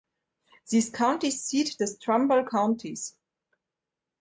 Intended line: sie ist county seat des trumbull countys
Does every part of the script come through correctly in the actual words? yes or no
yes